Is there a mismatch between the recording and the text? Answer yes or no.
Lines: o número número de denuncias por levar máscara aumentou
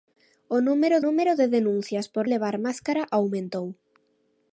no